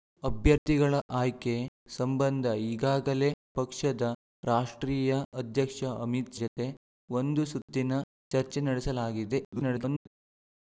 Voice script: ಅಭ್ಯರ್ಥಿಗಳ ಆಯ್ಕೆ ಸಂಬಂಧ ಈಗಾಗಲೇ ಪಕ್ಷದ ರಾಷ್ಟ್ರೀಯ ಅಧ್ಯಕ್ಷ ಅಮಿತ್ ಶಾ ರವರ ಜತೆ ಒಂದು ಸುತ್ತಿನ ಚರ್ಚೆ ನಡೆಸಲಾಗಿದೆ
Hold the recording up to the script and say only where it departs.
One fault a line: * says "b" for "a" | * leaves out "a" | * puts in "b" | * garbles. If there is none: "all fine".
* leaves out "ಶಾ ರವರ"
* garbles